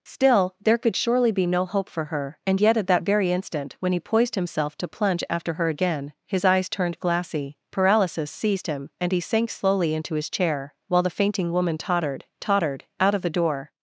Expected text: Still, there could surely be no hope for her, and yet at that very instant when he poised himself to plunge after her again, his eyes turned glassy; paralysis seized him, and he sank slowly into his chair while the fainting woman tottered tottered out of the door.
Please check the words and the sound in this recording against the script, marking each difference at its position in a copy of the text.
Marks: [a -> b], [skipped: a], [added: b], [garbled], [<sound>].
Still, there could surely be no hope for her, and yet at that very instant when he poised himself to plunge after her again, his eyes turned glassy; paralysis seized him, and he sank slowly into his chair while the fainting woman tottered tottered out of the door.